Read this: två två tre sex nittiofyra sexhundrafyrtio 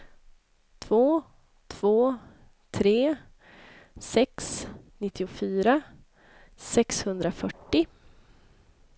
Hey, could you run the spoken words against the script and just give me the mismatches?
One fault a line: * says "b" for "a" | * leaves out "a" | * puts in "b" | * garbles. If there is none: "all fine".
all fine